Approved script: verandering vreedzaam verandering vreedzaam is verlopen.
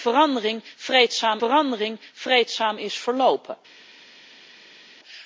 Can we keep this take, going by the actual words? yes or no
yes